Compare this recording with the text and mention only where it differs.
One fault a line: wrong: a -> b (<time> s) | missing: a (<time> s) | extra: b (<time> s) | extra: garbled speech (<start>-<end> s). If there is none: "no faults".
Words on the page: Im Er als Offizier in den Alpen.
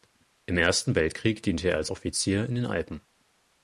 extra: Ersten Weltkrieg diente (0.6 s)